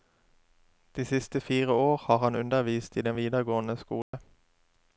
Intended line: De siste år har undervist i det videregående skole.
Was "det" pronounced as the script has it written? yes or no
no